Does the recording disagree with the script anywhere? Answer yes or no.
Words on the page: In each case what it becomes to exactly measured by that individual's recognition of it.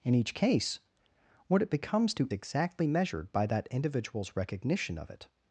no